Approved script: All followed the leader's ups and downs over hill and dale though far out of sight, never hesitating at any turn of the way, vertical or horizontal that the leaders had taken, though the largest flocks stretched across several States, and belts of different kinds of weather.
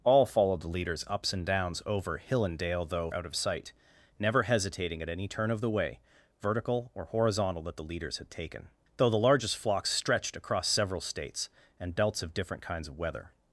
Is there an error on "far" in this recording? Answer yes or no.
yes